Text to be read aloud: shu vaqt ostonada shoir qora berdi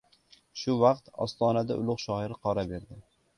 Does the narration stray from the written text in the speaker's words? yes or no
yes